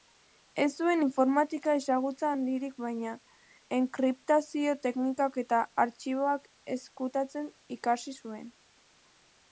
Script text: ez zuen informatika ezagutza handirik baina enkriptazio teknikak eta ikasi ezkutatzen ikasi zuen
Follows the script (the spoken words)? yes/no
no